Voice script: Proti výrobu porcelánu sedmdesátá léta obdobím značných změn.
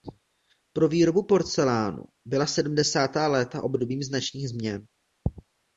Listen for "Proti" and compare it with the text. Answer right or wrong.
wrong